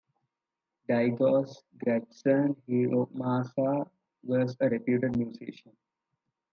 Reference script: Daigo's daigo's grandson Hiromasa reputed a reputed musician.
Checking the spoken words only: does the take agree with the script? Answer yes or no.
no